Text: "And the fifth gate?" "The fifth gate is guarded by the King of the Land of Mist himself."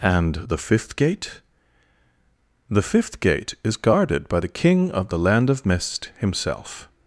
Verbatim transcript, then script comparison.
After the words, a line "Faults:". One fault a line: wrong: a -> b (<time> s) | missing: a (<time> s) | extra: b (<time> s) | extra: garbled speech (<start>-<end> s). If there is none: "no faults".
"And the fifth gate?" "The fifth gate is guarded by the King of the Land of Mist himself."
Faults:
no faults